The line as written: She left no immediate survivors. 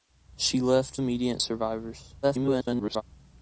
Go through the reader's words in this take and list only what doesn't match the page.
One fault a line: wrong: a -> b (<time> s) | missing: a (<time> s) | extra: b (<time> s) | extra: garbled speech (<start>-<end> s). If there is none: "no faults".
missing: no (1.0 s)
extra: garbled speech (2.2-3.0 s)